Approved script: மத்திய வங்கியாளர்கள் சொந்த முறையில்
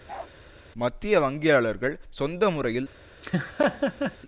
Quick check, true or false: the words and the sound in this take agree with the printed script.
false